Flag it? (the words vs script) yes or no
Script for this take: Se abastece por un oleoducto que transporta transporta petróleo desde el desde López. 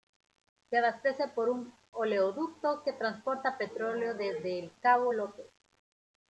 yes